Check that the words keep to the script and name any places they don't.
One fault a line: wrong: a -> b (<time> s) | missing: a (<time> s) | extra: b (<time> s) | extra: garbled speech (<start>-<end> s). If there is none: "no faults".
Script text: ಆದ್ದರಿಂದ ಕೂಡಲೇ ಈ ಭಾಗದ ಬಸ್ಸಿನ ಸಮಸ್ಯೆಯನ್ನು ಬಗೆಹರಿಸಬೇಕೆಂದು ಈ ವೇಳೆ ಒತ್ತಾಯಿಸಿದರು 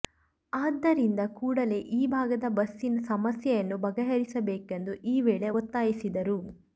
no faults